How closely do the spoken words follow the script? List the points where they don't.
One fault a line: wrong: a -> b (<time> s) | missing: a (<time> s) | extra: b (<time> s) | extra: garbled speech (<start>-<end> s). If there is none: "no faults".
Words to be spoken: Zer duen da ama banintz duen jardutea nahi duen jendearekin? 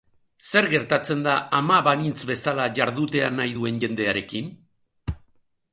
wrong: duen -> gertatzen (0.7 s)
wrong: duen -> bezala (2.3 s)